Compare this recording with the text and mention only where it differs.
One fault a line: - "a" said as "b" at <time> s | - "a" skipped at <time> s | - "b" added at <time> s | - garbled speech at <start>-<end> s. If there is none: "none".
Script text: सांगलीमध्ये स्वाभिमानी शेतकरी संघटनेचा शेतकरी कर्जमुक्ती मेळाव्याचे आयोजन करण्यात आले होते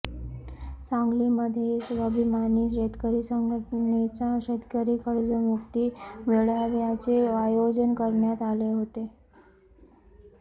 none